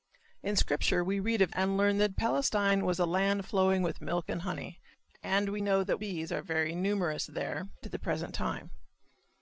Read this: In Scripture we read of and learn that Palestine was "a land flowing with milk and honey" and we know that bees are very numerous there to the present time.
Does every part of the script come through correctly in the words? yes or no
yes